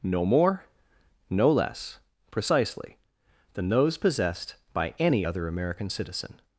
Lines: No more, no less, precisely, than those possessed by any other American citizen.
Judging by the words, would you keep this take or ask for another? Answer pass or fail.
pass